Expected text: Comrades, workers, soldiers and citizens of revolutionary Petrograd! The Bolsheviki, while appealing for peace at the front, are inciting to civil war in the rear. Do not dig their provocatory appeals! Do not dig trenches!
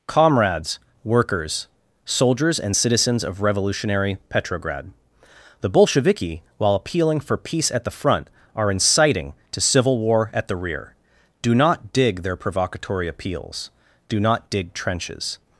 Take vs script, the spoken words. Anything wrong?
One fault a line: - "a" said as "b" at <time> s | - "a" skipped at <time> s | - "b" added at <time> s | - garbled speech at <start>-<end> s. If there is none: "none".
- "in" said as "at" at 10.3 s